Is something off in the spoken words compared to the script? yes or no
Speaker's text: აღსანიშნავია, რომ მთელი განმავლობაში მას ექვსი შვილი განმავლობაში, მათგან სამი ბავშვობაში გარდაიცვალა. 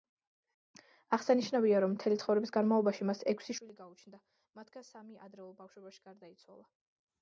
yes